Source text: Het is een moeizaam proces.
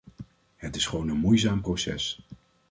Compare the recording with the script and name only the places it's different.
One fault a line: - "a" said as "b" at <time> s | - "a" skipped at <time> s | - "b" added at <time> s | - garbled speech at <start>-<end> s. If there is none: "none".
- "gewoon" added at 0.8 s